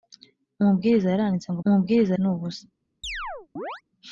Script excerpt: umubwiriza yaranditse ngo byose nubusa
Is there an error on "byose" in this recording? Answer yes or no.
yes